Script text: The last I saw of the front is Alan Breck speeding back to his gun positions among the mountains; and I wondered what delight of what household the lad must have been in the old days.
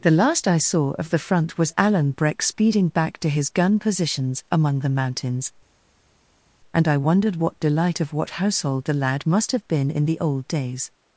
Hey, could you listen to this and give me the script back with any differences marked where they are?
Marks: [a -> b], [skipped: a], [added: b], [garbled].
The last I saw of the front [is -> was] Alan Breck speeding back to his gun positions among the mountains; and I wondered what delight of what household the lad must have been in the old days.